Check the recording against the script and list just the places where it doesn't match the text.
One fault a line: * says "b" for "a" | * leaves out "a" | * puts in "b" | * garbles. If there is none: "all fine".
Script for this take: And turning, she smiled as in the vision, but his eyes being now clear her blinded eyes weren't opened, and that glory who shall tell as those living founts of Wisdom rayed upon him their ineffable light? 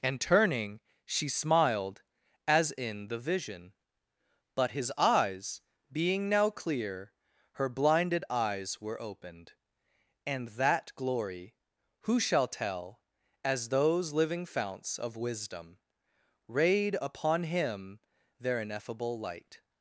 * says "were" for "weren't"